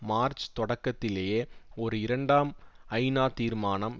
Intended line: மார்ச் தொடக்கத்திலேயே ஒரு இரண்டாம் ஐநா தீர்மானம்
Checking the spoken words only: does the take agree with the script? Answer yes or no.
yes